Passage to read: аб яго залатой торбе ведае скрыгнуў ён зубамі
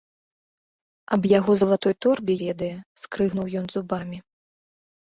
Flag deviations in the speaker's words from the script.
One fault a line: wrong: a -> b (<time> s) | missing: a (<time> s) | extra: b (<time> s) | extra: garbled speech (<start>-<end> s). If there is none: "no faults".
no faults